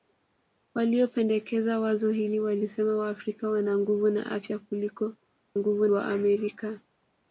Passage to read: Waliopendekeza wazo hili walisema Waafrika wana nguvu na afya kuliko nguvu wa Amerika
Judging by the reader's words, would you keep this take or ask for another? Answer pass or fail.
pass